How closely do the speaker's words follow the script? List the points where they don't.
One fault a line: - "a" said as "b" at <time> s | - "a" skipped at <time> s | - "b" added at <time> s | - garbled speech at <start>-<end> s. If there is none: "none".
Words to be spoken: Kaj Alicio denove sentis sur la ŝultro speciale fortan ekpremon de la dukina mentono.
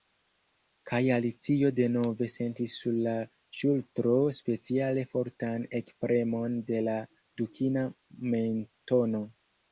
none